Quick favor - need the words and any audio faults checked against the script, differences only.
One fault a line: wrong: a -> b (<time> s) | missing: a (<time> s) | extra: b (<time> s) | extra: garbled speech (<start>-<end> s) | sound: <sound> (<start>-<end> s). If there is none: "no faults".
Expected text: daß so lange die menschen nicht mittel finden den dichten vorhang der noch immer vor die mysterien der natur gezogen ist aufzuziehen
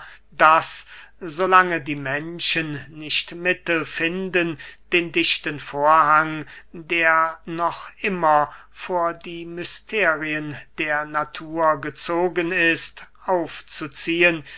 no faults